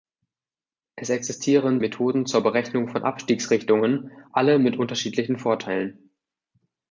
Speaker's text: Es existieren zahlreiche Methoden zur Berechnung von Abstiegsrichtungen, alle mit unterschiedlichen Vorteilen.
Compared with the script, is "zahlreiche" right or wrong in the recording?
wrong